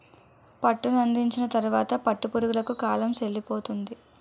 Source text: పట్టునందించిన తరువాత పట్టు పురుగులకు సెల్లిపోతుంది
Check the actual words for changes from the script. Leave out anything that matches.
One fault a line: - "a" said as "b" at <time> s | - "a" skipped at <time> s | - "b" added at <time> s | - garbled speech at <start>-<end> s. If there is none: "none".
- "కాలం" added at 2.8 s